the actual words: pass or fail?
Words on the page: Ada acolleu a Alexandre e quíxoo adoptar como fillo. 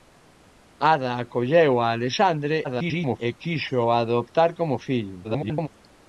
fail